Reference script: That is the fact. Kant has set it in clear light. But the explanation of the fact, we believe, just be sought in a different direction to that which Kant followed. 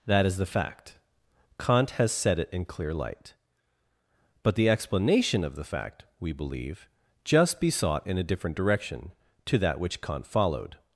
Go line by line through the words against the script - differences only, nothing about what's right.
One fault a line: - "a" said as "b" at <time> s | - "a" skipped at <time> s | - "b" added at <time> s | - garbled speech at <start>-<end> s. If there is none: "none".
none